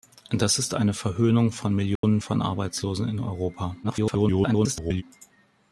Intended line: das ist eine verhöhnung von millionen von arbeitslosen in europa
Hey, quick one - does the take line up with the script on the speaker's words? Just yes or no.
no